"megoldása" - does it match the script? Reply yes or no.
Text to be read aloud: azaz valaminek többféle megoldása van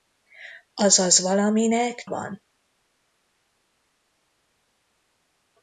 no